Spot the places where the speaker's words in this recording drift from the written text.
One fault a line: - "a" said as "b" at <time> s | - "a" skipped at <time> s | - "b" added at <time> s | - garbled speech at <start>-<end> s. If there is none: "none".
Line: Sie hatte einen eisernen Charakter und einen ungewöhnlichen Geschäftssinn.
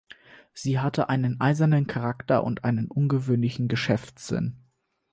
none